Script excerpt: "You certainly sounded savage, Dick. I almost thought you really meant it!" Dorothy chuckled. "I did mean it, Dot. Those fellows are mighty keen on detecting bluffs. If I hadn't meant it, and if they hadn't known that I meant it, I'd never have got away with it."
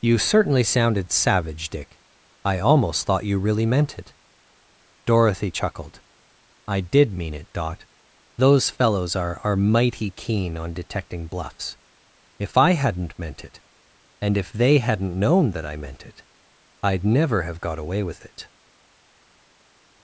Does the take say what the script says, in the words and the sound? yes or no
no